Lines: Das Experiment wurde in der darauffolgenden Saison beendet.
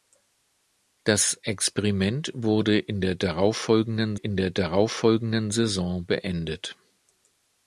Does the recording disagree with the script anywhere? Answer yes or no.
yes